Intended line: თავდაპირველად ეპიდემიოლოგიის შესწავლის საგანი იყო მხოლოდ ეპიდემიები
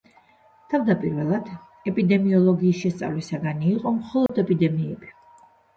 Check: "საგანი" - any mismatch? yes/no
no